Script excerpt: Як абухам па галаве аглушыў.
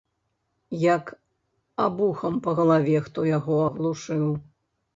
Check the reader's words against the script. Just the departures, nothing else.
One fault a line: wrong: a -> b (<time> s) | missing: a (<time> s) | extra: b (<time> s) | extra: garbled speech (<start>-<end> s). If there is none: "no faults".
extra: хто яго (3.1 s)